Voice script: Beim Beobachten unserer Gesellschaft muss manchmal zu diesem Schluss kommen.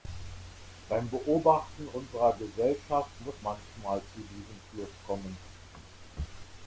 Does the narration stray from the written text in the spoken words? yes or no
no